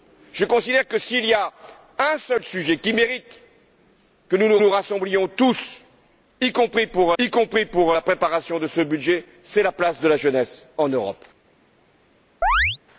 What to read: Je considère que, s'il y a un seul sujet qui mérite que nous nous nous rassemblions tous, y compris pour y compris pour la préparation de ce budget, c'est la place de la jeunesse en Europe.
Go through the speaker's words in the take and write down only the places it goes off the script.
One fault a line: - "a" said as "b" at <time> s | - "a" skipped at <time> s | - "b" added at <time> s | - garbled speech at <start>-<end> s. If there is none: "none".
none